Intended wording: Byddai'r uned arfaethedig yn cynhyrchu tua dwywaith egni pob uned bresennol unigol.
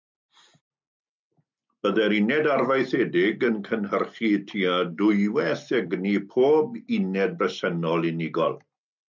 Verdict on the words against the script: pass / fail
pass